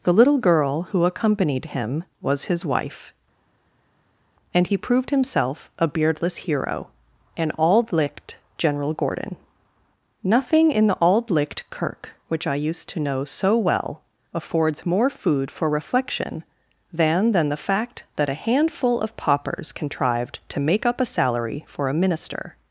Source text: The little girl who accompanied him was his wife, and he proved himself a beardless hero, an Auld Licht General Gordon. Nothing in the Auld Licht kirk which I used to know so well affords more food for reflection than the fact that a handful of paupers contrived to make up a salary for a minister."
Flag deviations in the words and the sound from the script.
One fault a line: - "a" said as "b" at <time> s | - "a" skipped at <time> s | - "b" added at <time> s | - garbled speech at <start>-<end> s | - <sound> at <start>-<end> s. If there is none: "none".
- "than" added at 17.3 s